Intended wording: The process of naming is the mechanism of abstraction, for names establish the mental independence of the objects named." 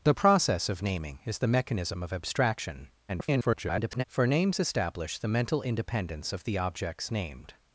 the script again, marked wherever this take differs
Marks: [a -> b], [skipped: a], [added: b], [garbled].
The process of naming is the mechanism of abstraction, [garbled] for names establish the mental independence of the objects named."